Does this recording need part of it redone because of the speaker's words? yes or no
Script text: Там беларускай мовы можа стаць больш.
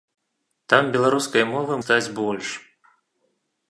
yes